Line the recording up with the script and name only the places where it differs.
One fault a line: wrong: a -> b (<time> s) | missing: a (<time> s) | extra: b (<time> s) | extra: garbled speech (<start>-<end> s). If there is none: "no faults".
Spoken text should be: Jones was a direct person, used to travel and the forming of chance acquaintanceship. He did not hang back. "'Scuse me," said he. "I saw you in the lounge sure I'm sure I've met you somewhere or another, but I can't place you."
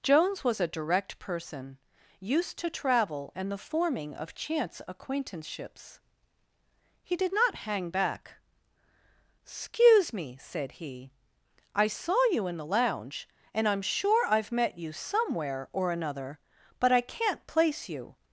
wrong: acquaintanceship -> acquaintanceships (4.9 s)
wrong: sure -> and (13.5 s)